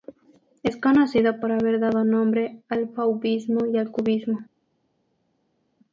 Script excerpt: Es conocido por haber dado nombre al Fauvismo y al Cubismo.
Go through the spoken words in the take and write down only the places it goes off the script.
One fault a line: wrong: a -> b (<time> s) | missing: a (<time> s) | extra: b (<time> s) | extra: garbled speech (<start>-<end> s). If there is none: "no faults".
no faults